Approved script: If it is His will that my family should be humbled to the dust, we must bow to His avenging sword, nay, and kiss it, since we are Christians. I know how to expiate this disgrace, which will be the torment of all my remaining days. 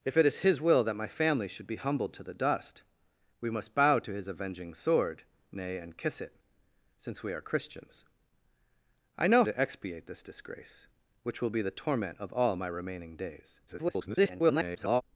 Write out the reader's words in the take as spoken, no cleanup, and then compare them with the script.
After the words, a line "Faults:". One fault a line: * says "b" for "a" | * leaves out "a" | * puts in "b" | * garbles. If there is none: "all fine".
If it is His will that my family should be humbled to the dust, we must bow to His avenging sword, nay, and kiss it, since we are Christians. I know to expiate this disgrace, which will be the torment of all my remaining days. [garbled]
Faults:
* leaves out "how"
* garbles